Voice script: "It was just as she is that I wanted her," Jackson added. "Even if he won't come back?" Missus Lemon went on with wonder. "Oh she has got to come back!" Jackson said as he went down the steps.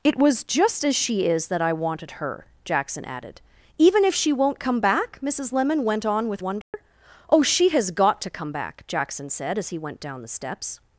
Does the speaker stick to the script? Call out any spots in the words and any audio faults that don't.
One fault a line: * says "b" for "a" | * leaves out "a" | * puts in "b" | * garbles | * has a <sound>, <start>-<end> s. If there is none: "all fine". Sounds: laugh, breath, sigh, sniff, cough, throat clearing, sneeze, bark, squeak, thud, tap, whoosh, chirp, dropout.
* says "she" for "he"
* has a dropout, 6.6-6.7 s